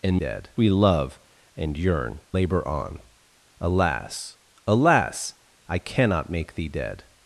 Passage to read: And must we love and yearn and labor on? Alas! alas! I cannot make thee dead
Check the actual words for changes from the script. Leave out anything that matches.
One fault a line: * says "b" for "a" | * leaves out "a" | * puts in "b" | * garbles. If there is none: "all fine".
* says "dead" for "must"
* leaves out "and"